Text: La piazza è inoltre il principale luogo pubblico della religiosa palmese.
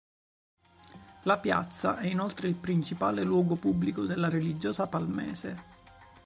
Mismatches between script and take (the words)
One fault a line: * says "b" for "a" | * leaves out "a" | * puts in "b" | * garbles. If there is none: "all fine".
all fine